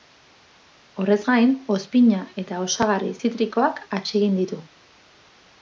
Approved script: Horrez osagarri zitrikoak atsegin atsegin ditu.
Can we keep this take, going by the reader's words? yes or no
no